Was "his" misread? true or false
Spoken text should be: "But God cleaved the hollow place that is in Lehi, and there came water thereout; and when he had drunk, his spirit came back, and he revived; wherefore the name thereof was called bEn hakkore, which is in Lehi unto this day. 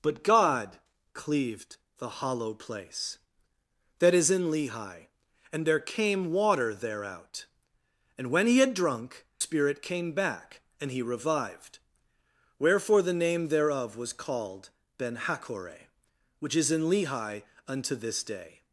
true